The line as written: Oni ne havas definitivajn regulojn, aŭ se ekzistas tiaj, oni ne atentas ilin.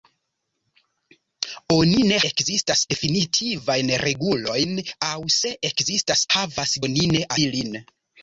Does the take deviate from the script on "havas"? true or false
true